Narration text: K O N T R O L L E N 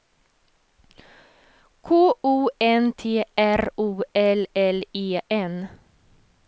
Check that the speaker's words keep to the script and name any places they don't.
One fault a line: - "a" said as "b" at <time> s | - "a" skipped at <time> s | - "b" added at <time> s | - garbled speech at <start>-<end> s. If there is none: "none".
none